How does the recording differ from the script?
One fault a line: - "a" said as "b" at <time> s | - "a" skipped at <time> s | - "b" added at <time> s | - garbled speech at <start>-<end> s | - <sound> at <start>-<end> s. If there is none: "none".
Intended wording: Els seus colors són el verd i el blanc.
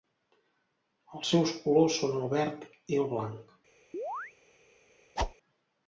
- chirp at 3.9-4.3 s
- whoosh at 5.2-5.3 s